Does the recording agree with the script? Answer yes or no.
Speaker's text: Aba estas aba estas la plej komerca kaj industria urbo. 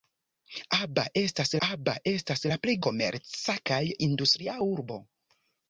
yes